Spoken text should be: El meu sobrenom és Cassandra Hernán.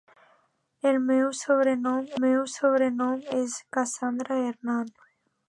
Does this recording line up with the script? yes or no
no